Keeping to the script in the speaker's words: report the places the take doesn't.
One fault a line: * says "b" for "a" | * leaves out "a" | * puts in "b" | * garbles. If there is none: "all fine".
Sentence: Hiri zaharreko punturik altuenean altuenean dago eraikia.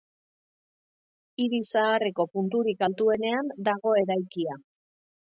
* leaves out "altuenean"